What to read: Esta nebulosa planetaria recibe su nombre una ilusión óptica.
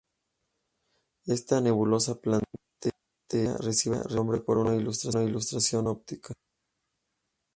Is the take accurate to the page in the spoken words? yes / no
no